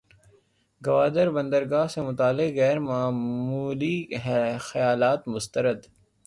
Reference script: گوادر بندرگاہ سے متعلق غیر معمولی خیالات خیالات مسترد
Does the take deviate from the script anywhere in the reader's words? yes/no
yes